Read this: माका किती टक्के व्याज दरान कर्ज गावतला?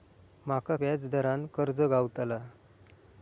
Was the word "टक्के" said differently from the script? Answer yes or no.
yes